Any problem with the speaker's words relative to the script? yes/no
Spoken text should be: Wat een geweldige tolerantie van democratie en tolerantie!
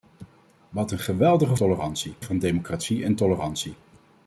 no